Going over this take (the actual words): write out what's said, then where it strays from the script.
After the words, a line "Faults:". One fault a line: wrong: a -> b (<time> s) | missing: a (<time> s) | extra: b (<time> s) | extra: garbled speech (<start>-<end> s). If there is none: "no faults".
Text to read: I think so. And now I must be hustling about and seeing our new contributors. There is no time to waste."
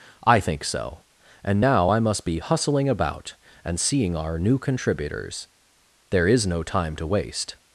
I think so. And now I must be hustling about and seeing our new contributors. There is no time to waste."
Faults:
no faults